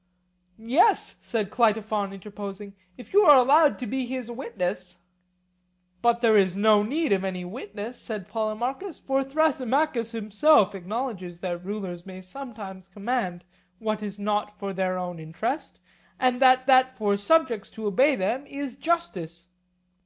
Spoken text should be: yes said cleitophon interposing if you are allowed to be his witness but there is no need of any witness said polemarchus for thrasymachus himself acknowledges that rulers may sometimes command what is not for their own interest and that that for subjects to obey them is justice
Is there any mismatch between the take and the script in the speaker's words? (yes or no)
no